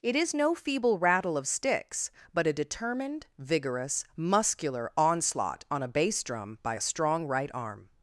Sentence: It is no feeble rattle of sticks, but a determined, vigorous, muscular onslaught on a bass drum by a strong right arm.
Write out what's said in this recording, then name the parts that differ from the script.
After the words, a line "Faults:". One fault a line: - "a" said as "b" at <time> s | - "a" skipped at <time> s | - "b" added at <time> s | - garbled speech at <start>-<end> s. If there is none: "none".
It is no feeble rattle of sticks, but a determined, vigorous, muscular onslaught on a bass drum by a strong right arm.
Faults:
none